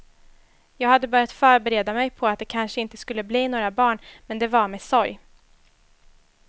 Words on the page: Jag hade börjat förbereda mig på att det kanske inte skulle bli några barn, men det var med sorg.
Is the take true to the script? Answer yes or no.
yes